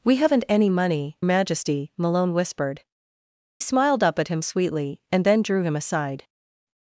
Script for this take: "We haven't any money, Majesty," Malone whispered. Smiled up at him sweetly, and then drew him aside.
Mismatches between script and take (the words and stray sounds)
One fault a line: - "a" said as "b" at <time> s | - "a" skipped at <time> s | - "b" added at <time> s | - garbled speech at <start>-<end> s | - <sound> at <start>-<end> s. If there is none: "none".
none